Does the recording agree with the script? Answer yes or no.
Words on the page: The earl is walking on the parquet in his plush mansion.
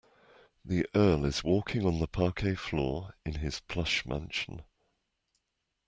no